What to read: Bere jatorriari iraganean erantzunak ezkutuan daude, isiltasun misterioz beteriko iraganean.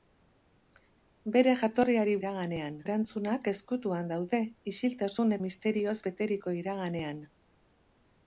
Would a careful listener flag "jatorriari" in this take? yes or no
no